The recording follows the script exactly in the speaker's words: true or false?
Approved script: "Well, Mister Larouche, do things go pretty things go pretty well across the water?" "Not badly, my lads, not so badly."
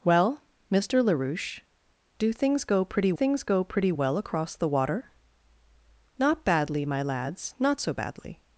true